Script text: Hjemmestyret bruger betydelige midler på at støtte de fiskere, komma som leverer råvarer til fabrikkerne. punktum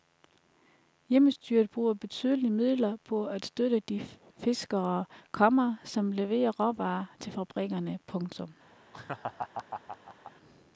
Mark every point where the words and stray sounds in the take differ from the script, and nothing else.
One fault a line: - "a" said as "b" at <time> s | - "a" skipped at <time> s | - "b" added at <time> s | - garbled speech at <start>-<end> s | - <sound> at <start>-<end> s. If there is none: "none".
- laugh at 8.9-10.3 s